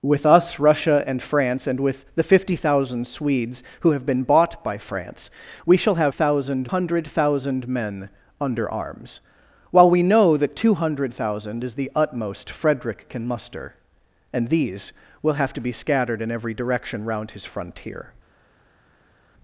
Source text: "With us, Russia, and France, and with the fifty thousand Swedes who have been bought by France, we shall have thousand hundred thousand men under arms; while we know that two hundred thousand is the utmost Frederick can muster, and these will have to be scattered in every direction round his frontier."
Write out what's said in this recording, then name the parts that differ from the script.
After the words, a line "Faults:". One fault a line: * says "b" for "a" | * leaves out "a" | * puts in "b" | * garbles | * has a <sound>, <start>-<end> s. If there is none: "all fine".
"With us, Russia, and France, and with the fifty thousand Swedes who have been bought by France, we shall have thousand hundred thousand men under arms; while we know that two hundred thousand is the utmost Frederick can muster, and these will have to be scattered in every direction round his frontier."
Faults:
all fine